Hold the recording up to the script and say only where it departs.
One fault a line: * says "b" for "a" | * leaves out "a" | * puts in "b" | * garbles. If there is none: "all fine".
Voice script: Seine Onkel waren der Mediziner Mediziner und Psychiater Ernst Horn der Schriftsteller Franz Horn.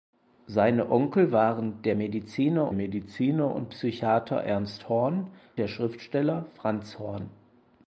all fine